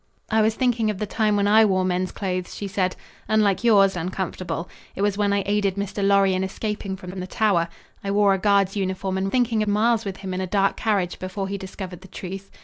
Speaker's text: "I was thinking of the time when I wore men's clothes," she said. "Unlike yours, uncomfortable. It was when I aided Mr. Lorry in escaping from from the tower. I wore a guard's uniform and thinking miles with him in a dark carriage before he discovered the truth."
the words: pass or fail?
pass